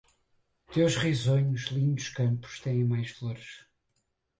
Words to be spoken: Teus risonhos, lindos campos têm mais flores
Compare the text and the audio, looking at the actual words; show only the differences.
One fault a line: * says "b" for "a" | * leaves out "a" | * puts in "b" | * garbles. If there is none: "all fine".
all fine